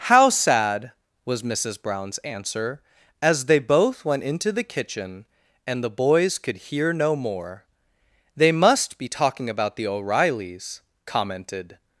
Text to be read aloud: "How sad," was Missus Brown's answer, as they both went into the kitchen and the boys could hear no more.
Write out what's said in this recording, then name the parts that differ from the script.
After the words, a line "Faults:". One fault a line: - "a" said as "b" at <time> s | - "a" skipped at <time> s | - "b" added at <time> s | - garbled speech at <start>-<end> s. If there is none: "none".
"How sad," was Missus Brown's answer, as they both went into the kitchen and the boys could hear no more. "They must be talking about the O'Reillys," commented
Faults:
- "They must be talking about the O'Reillys commented" added at 8.3 s